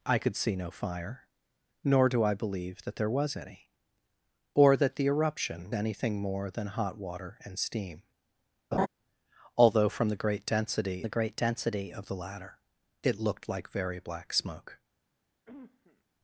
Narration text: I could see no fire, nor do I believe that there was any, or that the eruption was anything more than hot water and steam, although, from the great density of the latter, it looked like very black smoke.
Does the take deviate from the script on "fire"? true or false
false